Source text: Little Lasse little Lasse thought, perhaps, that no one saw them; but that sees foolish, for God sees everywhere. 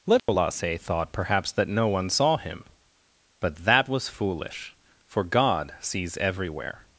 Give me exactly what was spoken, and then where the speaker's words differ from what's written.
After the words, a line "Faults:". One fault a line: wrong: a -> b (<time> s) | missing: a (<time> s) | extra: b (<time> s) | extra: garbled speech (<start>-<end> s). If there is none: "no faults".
Little Lasse thought, perhaps, that no one saw him; but that was foolish, for God sees everywhere.
Faults:
missing: little Lasse (0.8 s)
wrong: them -> him (2.4 s)
wrong: sees -> was (3.9 s)